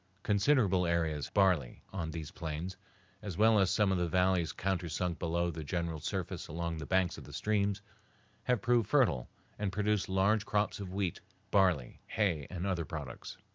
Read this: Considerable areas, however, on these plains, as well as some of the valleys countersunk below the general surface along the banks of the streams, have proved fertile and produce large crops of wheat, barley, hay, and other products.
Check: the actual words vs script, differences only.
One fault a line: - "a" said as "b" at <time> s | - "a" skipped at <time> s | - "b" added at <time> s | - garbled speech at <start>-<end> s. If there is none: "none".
- "however" said as "barley" at 1.3 s